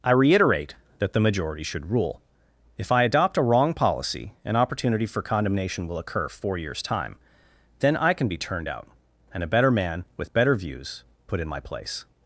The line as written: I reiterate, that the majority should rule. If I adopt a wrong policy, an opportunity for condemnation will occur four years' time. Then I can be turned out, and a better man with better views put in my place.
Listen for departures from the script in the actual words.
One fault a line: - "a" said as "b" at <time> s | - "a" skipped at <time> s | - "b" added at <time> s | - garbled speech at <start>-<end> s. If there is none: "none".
none